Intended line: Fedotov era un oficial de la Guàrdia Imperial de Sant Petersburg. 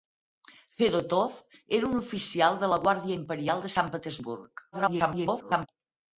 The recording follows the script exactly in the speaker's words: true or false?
false